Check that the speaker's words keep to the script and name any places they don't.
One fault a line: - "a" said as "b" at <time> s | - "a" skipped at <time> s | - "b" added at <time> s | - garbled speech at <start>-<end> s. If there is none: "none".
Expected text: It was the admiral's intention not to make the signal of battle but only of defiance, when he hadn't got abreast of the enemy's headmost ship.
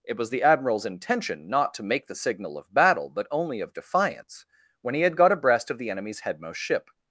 - "hadn't" said as "had" at 5.0 s